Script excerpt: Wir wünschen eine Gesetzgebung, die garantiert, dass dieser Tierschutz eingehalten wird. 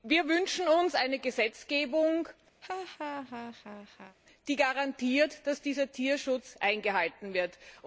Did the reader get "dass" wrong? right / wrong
right